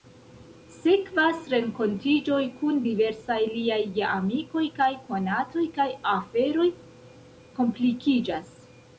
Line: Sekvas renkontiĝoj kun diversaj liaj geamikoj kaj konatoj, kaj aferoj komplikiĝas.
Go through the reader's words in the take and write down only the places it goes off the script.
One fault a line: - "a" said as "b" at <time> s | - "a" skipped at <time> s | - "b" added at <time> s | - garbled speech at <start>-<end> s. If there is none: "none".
none